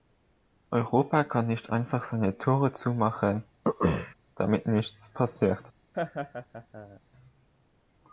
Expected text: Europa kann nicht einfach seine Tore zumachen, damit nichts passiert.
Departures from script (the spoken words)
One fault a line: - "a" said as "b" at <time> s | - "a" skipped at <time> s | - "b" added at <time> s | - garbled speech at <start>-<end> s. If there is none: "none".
none